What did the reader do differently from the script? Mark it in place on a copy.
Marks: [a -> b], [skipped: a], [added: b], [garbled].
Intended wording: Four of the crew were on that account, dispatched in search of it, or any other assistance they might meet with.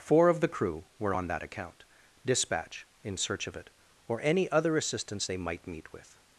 Four of the crew were on that account, [dispatched -> dispatch] in search of it, or any other assistance they might meet with.